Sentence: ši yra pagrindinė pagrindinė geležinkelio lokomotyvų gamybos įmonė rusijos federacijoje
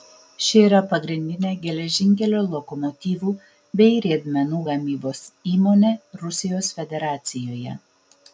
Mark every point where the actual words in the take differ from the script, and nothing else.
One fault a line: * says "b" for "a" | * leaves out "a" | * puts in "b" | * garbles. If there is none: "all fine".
* leaves out "pagrindinė"
* puts in "bei riedmenų"